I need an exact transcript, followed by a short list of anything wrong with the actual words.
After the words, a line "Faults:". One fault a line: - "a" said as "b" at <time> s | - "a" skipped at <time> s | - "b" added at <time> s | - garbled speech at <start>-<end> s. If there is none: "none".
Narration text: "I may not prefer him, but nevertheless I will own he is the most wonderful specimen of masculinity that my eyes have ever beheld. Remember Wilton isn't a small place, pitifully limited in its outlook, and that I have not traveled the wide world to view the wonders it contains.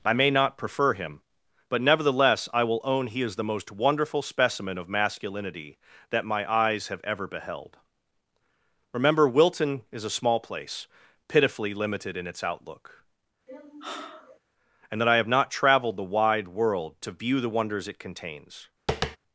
"I may not prefer him, but nevertheless I will own he is the most wonderful specimen of masculinity that my eyes have ever beheld. Remember Wilton is a small place, pitifully limited in its outlook, and that I have not traveled the wide world to view the wonders it contains.
Faults:
- "isn't" said as "is" at 9.9 s